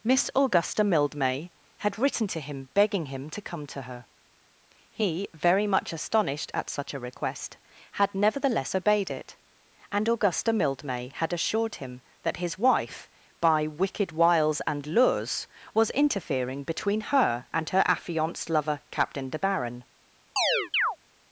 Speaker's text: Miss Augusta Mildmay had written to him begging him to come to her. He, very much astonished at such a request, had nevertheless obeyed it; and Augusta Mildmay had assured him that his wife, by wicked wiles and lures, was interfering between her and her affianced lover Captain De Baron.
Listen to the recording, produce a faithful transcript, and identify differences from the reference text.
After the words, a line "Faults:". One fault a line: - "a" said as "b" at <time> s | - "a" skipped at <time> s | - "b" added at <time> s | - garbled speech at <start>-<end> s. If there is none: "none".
Miss Augusta Mildmay had written to him begging him to come to her. He, very much astonished at such a request, had nevertheless obeyed it; and Augusta Mildmay had assured him that his wife, by wicked wiles and lures, was interfering between her and her affianced lover Captain De Baron.
Faults:
none